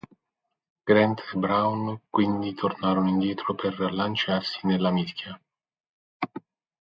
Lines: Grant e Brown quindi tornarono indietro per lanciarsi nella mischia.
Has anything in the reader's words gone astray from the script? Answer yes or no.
no